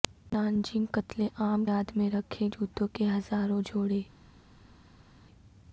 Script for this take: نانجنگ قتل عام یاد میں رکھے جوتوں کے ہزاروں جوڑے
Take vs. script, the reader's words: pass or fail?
pass